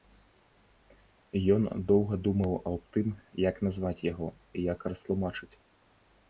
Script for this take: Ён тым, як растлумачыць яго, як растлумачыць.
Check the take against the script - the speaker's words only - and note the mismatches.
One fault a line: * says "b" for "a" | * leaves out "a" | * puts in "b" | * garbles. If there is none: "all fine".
* puts in "доўга думаў аб"
* says "назваць" for "растлумачыць"